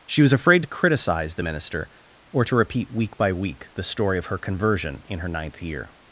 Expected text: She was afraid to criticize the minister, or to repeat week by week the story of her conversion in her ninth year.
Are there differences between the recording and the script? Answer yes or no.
no